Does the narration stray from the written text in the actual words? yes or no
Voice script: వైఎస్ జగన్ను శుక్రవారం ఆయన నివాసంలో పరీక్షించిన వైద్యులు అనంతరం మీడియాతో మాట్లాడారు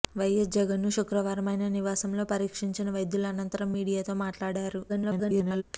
yes